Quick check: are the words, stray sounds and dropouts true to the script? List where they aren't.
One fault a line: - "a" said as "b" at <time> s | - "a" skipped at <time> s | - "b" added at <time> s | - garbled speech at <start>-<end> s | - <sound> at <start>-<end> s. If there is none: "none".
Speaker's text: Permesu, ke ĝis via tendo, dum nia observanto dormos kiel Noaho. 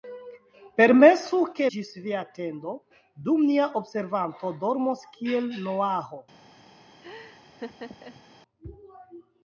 - laugh at 7.0-8.2 s